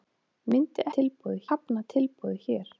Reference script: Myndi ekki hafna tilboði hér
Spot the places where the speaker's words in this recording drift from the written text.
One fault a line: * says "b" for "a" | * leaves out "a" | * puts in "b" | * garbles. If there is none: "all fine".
* says "tilboði" for "ekki"